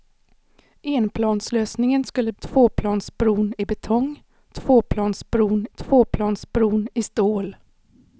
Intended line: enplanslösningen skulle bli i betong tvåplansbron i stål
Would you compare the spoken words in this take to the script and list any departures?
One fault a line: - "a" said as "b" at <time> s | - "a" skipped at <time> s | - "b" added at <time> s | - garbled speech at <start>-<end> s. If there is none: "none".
- "bli" said as "tvåplansbron" at 2.4 s
- "tvåplansbron" added at 5.8 s